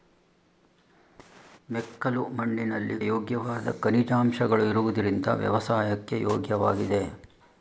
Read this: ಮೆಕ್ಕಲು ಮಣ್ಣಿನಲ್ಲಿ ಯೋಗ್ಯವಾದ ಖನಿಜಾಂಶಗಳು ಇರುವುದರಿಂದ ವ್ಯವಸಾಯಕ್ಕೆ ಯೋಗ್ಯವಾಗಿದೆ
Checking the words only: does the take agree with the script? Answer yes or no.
yes